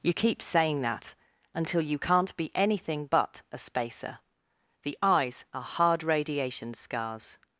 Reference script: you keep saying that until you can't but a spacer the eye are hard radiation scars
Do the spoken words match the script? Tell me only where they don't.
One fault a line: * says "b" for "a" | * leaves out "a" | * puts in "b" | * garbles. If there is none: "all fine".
* puts in "be anything"
* says "eyes" for "eye"